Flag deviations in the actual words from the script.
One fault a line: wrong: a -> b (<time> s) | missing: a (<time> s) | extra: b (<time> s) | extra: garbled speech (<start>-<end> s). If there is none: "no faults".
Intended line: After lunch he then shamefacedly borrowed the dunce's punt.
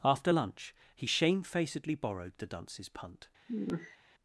missing: then (1.1 s)